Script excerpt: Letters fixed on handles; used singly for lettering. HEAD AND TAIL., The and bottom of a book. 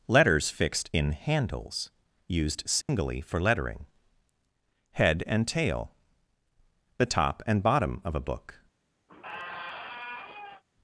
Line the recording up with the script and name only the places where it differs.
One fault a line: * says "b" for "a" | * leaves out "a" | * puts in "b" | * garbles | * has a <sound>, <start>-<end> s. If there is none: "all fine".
* says "in" for "on"
* has a dropout, 2.8-2.9 s
* puts in "top"
* has a squeak, 9.1-10.6 s